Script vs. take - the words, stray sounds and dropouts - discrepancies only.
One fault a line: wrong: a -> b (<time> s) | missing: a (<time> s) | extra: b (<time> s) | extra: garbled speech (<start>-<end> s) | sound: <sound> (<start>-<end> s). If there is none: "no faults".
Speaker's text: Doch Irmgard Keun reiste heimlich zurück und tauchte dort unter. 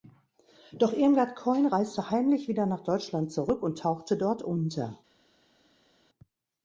extra: wieder nach Deutschland (2.5 s)